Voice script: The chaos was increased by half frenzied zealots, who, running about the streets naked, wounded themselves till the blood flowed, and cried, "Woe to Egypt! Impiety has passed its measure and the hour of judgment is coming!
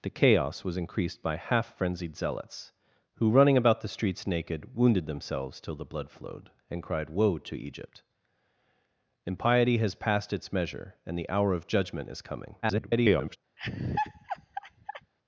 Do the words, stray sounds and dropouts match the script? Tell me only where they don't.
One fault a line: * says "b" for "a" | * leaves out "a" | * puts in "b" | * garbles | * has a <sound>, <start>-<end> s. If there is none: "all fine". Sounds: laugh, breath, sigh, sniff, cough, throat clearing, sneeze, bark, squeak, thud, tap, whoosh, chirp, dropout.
* garbles
* has a laugh, 13.6-15.1 s